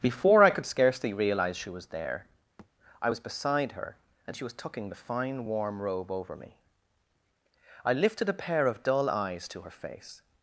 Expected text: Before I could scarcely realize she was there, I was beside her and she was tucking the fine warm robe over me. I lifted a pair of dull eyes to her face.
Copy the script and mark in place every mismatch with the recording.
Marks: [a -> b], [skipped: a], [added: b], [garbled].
Before I could scarcely realize she was there, I was beside her and she was tucking the fine warm robe over me. I lifted a pair of dull eyes to her face.